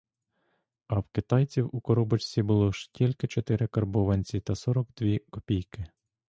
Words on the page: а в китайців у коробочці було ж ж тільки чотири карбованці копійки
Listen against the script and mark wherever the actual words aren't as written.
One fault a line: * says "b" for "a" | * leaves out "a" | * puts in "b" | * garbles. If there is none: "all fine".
* leaves out "ж"
* puts in "та сорок дві"